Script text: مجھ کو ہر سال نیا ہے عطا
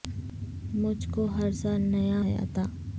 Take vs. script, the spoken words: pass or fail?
pass